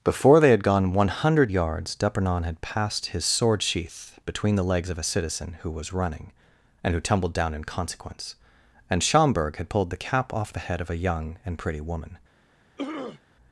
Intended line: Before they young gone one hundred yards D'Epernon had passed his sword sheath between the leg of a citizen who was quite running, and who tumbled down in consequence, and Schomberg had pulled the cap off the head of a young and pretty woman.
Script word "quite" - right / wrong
wrong